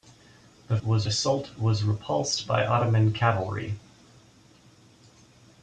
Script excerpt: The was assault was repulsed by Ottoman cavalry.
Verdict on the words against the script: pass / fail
pass